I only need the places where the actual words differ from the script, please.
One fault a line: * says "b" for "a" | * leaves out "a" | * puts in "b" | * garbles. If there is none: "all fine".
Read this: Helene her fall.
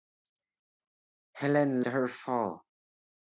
all fine